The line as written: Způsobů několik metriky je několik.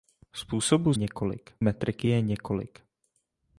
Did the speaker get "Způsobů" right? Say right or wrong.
right